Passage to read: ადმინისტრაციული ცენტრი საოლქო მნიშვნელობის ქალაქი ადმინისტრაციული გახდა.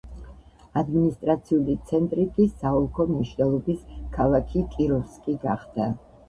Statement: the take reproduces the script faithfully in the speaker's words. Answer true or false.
false